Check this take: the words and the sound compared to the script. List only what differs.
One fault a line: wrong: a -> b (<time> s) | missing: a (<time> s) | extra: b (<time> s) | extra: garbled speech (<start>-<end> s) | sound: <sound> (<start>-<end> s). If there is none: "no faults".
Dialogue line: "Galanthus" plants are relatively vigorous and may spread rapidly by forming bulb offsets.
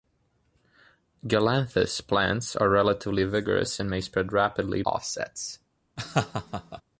missing: by forming bulb (4.8 s)
sound: laugh (6.0-6.8 s)